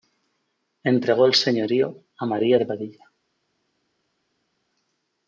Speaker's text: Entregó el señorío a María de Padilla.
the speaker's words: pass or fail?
pass